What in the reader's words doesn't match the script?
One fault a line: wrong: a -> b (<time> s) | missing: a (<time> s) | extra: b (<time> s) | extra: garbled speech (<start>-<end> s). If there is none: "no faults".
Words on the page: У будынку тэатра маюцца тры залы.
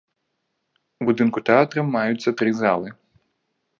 no faults